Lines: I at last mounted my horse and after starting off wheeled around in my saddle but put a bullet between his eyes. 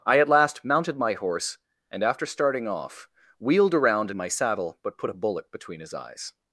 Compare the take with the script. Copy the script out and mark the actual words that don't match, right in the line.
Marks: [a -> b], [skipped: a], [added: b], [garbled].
I at last mounted my horse and after starting off wheeled around in my saddle but put a bullet between his eyes.